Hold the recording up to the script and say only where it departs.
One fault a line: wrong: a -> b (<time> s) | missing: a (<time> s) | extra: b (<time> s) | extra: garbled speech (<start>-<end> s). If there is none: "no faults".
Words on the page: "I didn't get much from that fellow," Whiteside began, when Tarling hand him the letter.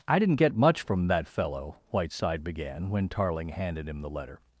wrong: hand -> handed (3.5 s)